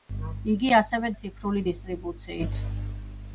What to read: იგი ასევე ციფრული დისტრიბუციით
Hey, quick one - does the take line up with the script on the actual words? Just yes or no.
yes